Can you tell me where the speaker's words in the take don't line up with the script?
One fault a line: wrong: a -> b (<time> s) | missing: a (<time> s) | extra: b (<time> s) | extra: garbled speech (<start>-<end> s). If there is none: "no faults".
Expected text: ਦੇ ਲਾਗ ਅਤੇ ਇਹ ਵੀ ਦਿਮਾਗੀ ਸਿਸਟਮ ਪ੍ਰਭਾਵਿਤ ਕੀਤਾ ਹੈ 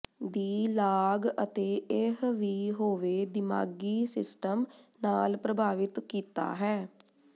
wrong: ਦੇ -> ਦੀ (0.2 s)
extra: ਹੋਵੇ (2.7 s)
extra: ਨਾਲ (5.0 s)